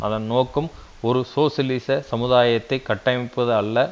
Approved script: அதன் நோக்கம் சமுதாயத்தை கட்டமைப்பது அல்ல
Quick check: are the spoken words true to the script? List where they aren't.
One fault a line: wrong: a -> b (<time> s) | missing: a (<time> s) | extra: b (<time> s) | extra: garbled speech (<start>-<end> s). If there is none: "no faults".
extra: ஒரு சோசியலிச (1.0 s)